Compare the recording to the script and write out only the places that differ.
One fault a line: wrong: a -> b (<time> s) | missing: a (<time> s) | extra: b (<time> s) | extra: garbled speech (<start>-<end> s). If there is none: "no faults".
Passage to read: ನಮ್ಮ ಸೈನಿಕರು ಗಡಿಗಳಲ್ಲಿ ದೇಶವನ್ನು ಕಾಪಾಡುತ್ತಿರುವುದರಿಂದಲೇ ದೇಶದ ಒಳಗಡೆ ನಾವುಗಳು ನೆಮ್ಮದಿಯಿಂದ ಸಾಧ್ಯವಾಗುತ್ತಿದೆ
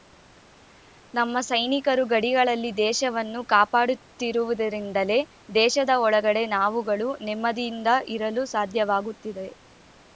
extra: ಇರಲು (8.2 s)